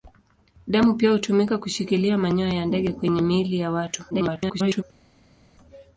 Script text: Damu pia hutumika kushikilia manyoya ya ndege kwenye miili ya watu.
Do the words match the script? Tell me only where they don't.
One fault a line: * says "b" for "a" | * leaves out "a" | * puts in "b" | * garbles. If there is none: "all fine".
* garbles